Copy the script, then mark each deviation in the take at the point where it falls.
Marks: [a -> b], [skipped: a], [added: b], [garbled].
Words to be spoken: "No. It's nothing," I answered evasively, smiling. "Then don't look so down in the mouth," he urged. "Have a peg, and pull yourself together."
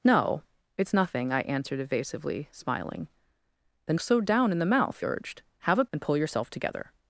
"No. It's nothing," I answered evasively, smiling. "Then [skipped: don't look] so down in the mouth," [skipped: he] urged. "Have a [skipped: peg,] and pull yourself together."